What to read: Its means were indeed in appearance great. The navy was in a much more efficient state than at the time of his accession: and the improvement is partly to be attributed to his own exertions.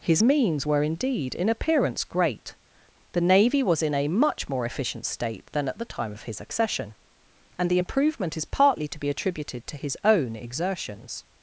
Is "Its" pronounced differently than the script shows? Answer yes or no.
yes